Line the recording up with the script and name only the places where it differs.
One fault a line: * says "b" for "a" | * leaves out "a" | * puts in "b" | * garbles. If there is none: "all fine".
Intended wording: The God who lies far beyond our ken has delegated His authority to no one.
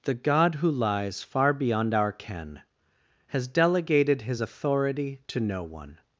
all fine